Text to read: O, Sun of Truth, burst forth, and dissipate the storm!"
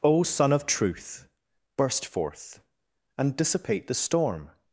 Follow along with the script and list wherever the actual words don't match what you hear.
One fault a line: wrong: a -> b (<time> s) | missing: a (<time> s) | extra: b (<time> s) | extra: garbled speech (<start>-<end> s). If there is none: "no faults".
no faults